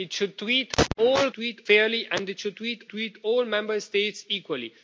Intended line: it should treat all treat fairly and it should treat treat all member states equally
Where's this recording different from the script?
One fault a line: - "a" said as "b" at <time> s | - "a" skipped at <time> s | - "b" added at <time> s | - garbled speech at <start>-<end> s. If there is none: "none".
none